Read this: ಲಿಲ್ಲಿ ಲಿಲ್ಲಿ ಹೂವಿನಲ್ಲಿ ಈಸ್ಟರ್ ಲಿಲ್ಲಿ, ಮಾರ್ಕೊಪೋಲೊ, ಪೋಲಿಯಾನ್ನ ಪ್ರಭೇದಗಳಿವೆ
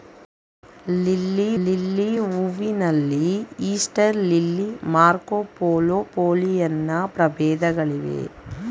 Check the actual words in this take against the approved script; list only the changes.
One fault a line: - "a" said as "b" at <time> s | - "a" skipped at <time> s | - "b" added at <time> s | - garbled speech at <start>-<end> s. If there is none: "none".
none